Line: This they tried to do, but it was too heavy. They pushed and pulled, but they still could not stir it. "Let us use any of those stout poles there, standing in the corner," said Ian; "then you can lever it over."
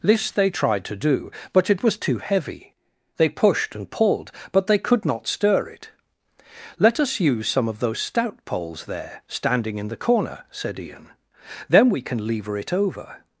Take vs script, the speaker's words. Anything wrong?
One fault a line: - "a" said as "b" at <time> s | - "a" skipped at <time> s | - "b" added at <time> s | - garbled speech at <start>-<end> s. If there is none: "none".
- "still" skipped at 4.8 s
- "any" said as "some" at 7.5 s
- "you" said as "we" at 11.9 s